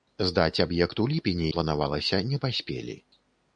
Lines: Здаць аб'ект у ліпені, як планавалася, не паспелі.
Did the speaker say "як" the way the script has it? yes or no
no